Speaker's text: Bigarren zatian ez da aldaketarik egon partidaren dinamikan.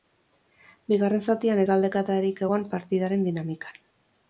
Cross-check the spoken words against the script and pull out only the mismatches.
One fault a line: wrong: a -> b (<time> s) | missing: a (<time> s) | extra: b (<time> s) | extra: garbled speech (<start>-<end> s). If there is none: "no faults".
no faults